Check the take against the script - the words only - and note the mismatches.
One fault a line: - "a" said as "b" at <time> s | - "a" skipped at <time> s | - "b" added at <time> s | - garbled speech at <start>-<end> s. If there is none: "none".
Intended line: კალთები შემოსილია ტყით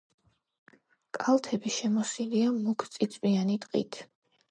- "მუქწიწვიანი" added at 2.5 s